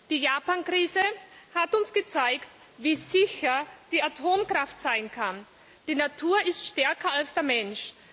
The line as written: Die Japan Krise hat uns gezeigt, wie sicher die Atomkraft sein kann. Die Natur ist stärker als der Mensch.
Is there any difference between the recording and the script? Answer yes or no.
no